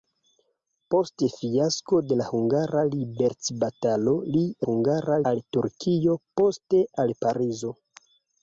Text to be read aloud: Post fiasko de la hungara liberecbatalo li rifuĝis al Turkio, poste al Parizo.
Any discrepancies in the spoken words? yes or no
yes